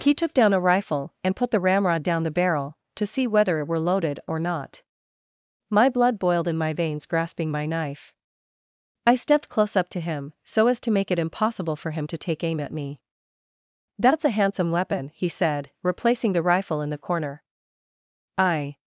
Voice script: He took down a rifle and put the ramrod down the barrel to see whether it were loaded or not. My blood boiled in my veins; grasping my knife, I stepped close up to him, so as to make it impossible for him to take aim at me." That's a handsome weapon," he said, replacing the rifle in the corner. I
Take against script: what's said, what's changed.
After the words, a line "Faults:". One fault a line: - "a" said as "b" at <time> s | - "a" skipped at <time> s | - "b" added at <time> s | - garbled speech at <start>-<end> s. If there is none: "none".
He took down a rifle and put the ramrod down the barrel to see whether it were loaded or not. My blood boiled in my veins; grasping my knife, I stepped close up to him, so as to make it impossible for him to take aim at me." That's a handsome weapon," he said, replacing the rifle in the corner. I
Faults:
none